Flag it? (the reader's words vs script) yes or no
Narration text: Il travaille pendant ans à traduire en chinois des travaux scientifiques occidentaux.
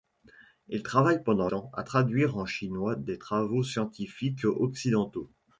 no